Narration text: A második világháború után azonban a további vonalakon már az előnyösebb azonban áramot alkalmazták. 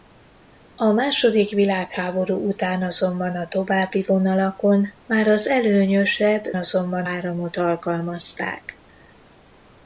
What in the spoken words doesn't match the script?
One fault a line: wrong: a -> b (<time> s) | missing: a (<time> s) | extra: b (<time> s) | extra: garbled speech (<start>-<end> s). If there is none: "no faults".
no faults